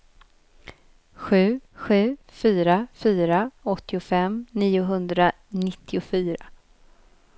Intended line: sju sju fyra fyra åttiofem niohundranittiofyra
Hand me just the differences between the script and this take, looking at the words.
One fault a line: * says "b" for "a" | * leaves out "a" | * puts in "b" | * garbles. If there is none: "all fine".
all fine